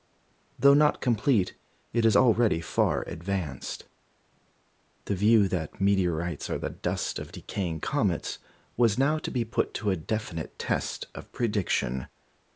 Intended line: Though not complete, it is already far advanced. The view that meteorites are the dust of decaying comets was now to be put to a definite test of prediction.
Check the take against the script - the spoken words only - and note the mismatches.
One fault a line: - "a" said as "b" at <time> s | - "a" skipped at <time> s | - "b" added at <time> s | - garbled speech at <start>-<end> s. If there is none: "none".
none